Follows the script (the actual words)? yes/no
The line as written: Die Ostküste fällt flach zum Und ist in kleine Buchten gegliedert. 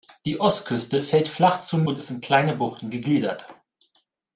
yes